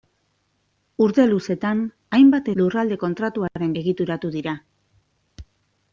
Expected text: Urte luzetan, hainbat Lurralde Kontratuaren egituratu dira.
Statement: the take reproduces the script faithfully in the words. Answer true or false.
true